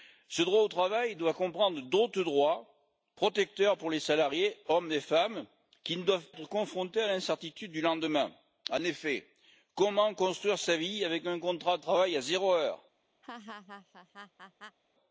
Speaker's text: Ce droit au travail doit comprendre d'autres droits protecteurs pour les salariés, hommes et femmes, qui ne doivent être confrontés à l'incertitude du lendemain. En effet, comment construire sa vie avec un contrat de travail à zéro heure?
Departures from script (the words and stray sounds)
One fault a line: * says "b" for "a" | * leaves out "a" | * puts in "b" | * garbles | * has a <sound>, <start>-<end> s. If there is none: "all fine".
* has a laugh, 13.2-14.8 s